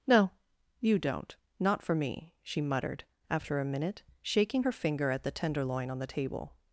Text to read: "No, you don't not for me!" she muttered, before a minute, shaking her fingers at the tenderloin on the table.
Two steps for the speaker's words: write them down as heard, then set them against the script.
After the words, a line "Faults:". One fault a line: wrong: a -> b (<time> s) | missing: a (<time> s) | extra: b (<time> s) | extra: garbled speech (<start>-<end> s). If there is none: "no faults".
"No, you don't not for me!" she muttered, after a minute, shaking her finger at the tenderloin on the table.
Faults:
wrong: before -> after (3.3 s)
wrong: fingers -> finger (4.7 s)